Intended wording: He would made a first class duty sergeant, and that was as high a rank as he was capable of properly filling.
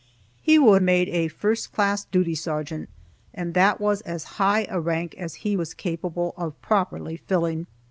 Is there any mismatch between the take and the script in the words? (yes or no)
no